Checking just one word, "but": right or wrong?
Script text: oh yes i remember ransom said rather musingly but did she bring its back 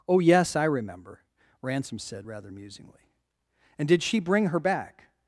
wrong